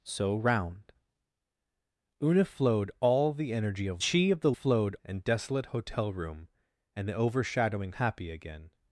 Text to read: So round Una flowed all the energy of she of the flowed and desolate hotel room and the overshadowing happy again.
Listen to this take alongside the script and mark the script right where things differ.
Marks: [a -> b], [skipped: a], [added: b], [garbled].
So round Una flowed all the energy of she of the flowed and desolate hotel room and the overshadowing happy again.